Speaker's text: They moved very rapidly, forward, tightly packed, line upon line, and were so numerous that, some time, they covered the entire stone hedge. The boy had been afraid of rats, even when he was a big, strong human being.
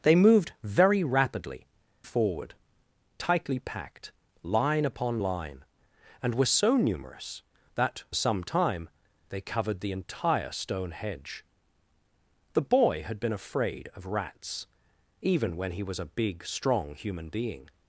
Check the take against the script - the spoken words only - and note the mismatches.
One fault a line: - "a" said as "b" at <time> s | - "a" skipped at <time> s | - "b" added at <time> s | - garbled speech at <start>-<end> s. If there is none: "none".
none